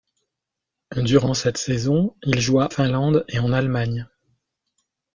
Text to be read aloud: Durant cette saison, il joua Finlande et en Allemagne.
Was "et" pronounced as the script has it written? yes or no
yes